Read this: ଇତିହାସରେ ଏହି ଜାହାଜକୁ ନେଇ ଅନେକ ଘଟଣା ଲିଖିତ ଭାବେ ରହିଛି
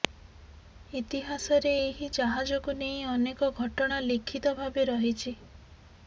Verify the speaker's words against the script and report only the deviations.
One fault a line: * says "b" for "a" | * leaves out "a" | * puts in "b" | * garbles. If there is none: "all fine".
all fine